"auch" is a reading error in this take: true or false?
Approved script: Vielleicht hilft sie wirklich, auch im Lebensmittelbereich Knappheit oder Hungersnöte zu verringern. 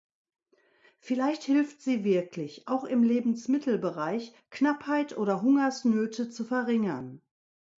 false